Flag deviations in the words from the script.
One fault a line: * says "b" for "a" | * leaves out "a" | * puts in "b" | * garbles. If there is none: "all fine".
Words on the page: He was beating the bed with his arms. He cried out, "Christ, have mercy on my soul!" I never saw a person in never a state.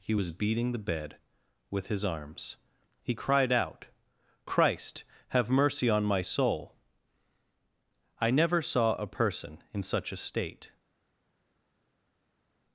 * says "such" for "never"